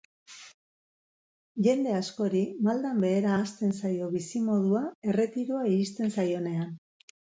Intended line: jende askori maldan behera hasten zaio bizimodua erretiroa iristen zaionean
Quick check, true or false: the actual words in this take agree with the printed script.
true